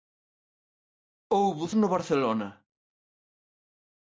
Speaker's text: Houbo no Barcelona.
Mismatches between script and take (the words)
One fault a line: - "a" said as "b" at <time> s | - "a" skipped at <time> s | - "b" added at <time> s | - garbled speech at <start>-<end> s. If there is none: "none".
none